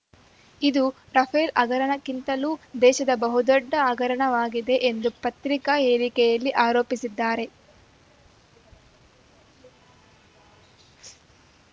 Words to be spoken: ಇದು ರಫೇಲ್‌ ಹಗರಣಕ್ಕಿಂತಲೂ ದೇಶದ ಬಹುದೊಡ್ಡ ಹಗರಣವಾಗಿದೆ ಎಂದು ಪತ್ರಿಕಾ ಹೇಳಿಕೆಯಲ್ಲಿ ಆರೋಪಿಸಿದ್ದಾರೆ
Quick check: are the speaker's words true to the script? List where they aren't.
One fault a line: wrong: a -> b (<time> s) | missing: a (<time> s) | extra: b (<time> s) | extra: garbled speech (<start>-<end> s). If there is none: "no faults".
no faults